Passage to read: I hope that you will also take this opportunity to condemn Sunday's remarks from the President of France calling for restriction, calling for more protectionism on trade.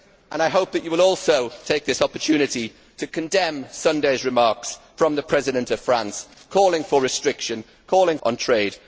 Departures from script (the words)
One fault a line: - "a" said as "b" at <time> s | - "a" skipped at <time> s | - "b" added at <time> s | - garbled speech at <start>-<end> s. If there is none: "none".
- "for more protectionism" skipped at 8.2 s